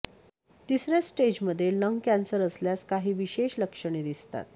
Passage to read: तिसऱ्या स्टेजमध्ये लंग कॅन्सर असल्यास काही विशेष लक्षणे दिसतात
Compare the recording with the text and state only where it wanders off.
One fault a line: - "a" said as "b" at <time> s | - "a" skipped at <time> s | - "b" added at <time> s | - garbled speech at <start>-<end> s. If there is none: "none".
none